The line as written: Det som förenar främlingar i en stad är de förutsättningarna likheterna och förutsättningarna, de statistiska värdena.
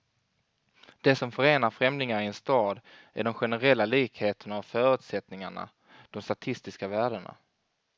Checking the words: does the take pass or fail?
fail